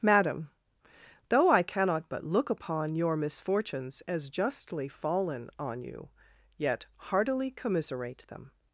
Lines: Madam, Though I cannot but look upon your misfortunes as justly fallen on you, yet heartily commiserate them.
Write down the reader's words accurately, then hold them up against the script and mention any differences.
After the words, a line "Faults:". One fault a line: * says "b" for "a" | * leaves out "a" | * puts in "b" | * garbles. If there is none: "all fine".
Madam, Though I cannot but look upon your misfortunes as justly fallen on you, yet heartily commiserate them.
Faults:
all fine